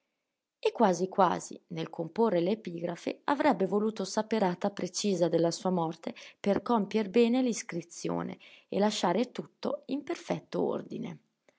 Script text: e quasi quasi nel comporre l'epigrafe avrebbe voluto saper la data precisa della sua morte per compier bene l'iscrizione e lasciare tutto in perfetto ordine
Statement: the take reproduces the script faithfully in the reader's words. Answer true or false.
false